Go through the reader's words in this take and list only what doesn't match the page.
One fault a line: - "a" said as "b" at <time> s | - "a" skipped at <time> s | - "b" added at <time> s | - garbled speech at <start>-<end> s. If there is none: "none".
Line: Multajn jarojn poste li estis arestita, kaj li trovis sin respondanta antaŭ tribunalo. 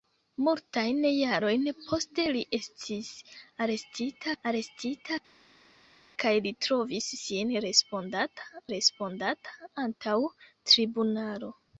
- "arestita" added at 4.5 s
- "respondanta" added at 8.7 s